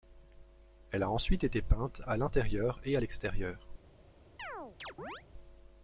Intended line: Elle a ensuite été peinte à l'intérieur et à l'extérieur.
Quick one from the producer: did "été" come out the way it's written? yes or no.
yes